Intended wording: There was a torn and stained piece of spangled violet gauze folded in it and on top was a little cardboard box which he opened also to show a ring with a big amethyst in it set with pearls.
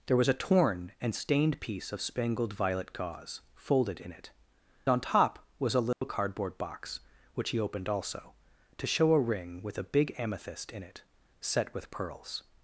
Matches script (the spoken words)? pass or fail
fail